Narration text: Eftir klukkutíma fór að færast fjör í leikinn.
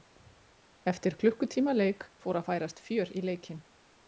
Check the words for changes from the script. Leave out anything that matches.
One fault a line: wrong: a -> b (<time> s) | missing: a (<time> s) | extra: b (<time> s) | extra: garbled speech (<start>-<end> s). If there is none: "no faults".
extra: leik (1.8 s)